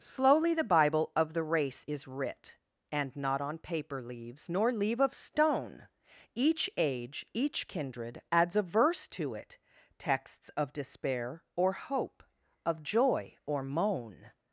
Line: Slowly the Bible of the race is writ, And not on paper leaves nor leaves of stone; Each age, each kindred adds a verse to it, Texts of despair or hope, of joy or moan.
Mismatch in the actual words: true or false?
true